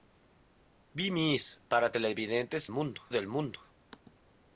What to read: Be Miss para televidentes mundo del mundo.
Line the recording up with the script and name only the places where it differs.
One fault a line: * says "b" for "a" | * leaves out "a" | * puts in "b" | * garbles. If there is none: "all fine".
all fine